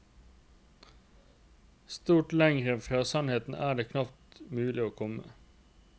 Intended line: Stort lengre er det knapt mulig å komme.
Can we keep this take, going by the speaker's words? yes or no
no